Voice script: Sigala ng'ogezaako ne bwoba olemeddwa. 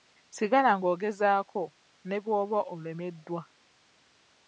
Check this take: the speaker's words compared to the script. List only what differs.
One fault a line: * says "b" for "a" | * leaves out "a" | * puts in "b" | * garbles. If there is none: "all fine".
all fine